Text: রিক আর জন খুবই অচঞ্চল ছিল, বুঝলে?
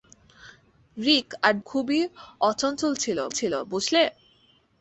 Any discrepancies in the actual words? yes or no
yes